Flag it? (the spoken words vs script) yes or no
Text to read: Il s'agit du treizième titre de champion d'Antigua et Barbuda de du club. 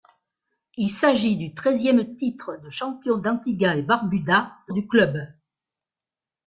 no